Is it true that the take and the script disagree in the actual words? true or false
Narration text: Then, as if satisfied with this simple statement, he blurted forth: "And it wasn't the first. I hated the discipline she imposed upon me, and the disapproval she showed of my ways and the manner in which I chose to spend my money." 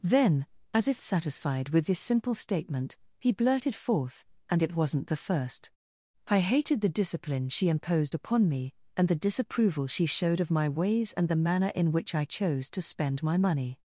false